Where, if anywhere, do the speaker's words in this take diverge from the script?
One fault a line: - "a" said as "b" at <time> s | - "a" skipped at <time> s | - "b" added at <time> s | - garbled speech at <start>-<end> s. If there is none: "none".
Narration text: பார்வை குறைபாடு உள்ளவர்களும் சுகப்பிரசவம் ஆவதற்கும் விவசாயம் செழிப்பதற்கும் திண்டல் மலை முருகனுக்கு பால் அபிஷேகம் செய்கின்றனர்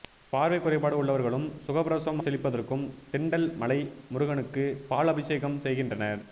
- "ஆவதற்கும் விவசாயம்" skipped at 2.2 s